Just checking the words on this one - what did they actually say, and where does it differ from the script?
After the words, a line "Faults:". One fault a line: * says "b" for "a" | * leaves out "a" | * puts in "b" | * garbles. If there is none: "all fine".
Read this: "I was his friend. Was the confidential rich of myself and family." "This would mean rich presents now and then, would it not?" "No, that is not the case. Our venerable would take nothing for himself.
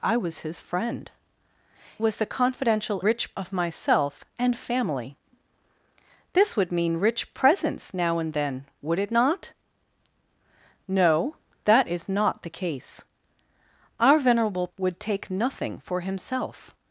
"I was his friend. Was the confidential rich of myself and family." "This would mean rich presents now and then, would it not?" "No, that is not the case. Our venerable would take nothing for himself.
Faults:
all fine